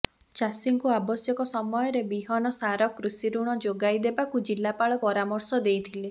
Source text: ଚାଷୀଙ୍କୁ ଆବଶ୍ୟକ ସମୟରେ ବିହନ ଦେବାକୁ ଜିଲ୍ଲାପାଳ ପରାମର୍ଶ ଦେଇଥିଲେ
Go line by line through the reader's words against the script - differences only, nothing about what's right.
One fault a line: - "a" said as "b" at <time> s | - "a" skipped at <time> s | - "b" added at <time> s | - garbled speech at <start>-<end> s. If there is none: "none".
- "ସାର କୃଷିଋଣ ଯୋଗାଇ" added at 2.5 s